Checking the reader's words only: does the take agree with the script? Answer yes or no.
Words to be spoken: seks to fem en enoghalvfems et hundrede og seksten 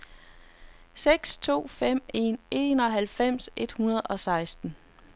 yes